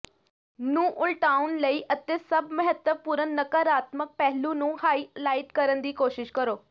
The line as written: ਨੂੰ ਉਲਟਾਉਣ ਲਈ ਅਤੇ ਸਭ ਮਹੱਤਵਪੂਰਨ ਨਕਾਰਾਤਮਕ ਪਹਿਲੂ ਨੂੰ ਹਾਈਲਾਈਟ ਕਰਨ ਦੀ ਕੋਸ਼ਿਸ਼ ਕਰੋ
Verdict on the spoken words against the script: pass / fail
pass